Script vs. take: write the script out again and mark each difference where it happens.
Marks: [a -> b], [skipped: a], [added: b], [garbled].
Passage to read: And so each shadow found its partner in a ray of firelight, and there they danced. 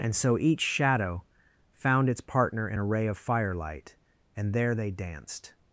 And so each shadow found its partner in a ray of firelight, and there they danced.